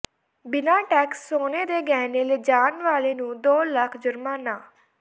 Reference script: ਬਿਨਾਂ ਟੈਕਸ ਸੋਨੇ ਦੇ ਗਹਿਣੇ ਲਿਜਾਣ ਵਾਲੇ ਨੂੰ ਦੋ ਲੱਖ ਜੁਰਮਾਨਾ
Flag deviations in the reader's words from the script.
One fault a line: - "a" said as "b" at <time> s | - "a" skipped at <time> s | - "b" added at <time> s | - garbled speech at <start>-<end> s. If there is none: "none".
none